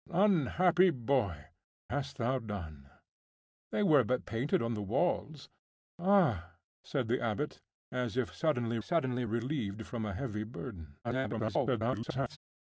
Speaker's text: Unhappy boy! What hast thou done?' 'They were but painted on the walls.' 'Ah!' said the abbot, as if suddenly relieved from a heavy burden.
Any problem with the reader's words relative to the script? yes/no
yes